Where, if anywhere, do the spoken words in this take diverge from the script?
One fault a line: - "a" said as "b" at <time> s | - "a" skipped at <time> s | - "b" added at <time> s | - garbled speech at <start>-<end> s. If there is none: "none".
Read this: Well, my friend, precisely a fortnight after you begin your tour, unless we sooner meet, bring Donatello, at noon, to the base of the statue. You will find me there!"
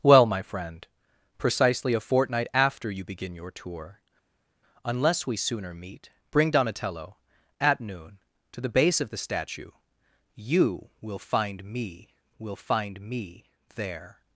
- "will find me" added at 12.4 s